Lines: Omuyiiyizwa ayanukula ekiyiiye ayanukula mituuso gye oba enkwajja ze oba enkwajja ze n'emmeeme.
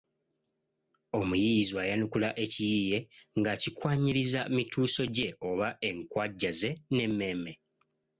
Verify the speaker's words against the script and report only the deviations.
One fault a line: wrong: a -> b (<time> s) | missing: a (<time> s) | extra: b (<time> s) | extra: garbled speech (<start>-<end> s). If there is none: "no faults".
wrong: ayanukula -> ng'akikwanyiriza (3.4 s)
missing: oba enkwajja ze (6.7 s)